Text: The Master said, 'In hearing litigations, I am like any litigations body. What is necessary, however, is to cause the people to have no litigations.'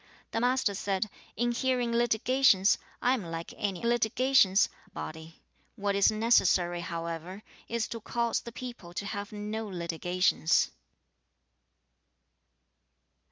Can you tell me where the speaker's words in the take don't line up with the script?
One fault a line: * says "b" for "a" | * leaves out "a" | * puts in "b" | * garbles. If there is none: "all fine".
all fine